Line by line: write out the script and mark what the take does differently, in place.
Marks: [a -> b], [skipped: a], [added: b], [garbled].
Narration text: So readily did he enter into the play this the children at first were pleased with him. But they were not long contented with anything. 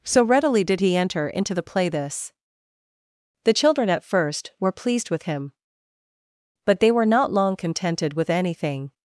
So readily did he enter into the play this the children at first were pleased with him. But they were not long contented with anything.